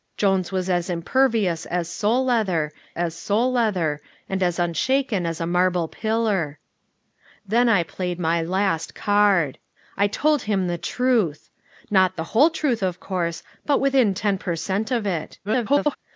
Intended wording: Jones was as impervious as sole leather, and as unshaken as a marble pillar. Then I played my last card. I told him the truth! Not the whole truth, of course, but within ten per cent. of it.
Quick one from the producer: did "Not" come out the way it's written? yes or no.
yes